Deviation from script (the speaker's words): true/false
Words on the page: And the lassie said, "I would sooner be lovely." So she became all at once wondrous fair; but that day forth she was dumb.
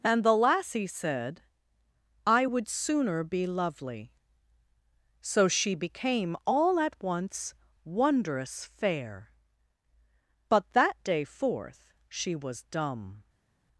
false